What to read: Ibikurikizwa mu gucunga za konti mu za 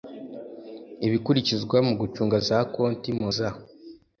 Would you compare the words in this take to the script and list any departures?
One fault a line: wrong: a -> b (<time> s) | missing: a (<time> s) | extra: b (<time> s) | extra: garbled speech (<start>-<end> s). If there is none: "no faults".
no faults